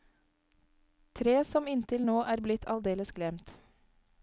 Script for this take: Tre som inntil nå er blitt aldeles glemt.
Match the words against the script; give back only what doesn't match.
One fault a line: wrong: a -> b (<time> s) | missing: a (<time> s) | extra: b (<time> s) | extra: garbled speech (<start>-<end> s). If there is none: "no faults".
no faults